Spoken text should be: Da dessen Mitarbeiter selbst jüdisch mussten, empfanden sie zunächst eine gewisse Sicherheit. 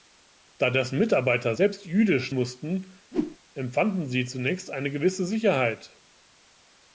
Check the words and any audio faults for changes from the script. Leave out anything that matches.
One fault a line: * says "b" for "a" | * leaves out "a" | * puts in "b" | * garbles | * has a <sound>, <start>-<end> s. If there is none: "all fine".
* has a whoosh, 3.1-3.4 s